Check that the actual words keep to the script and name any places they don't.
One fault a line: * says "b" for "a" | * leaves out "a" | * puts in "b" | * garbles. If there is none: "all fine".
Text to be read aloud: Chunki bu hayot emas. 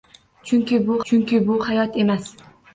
* puts in "chunki bu"